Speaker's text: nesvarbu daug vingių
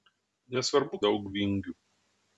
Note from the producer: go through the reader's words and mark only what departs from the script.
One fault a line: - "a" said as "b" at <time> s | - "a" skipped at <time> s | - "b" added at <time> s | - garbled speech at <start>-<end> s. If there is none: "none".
none